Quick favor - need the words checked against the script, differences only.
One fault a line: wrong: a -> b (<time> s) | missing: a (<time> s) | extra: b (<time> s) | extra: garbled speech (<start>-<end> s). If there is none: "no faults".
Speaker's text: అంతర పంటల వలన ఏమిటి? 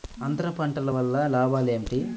extra: లాభాలు (1.3 s)